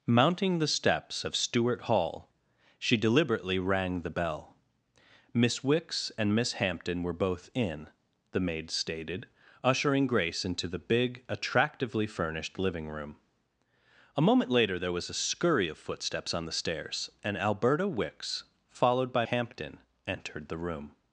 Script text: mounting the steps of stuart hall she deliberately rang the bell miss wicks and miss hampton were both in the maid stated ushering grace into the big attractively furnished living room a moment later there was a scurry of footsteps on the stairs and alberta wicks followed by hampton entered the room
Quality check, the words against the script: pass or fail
pass